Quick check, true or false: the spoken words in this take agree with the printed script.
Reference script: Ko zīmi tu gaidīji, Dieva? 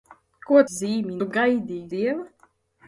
true